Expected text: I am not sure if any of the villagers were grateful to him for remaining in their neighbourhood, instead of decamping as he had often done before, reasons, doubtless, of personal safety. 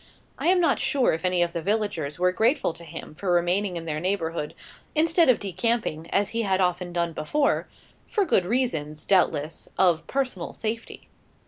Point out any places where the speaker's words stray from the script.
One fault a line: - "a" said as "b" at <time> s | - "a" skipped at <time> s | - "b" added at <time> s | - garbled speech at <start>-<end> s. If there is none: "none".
- "for good" added at 8.1 s